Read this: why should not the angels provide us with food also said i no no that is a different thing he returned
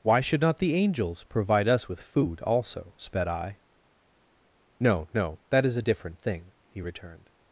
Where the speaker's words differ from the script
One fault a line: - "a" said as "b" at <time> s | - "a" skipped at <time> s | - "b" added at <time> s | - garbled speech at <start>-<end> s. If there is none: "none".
- "said" said as "sped" at 3.0 s